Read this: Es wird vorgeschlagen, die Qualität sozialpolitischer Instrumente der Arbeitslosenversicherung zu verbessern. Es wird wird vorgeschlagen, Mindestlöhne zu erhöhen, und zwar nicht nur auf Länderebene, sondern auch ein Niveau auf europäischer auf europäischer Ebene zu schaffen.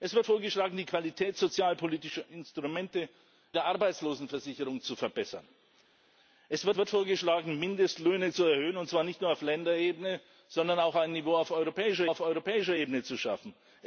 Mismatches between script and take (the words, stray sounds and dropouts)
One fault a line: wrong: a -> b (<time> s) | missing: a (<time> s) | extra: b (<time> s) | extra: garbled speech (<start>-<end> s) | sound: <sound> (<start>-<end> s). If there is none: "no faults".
no faults